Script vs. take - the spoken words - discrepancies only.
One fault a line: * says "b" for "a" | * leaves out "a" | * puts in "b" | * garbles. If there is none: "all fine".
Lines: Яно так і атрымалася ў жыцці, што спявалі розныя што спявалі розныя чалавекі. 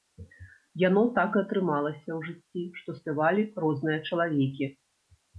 * leaves out "што спявалі розныя"